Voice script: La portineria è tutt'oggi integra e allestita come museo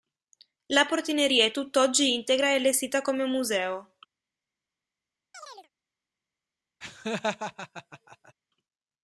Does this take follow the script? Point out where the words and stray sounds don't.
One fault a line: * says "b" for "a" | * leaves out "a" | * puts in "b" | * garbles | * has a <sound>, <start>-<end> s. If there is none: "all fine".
* has a chirp, 5.3-5.7 s
* has a laugh, 6.8-8.3 s